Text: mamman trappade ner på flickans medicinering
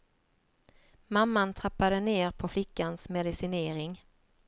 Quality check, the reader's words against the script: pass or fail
pass